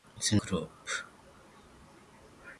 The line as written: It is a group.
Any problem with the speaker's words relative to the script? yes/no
no